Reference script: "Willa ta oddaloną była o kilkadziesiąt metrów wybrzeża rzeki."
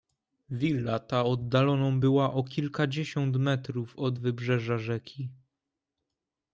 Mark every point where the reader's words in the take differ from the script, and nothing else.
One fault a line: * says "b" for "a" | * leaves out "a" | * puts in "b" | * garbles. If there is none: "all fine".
* puts in "od"